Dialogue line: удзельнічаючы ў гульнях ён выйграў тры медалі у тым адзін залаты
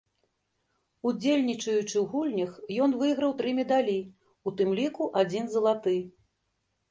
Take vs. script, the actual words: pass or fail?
fail